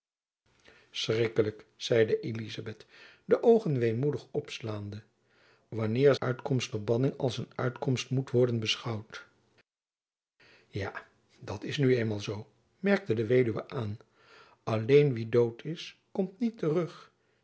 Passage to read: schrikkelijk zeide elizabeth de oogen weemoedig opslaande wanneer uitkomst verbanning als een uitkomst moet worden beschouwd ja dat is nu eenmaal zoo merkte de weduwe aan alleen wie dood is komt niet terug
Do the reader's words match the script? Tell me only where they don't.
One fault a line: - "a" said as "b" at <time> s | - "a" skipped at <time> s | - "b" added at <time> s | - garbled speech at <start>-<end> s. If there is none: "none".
none